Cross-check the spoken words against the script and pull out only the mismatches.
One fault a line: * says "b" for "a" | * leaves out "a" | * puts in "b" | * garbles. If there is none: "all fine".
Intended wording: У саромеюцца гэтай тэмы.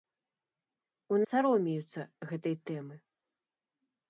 all fine